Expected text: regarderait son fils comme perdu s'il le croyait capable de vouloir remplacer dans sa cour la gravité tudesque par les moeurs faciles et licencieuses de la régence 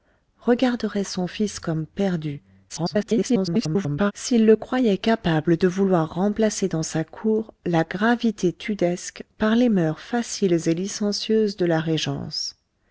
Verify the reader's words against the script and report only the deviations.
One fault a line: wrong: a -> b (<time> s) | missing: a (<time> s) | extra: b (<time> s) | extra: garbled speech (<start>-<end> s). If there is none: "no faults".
extra: garbled speech (2.7-4.1 s)